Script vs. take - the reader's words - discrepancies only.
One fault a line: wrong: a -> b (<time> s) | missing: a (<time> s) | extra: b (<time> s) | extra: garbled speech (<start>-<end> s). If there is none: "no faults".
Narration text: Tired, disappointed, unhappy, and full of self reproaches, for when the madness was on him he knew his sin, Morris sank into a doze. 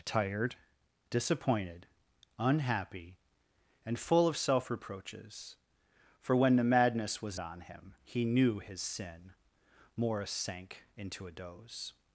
no faults